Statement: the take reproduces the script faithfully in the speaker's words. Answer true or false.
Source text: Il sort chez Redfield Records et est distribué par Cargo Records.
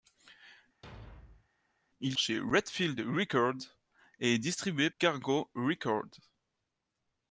false